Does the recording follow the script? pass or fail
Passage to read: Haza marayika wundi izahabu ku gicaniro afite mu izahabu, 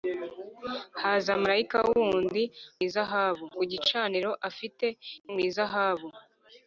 pass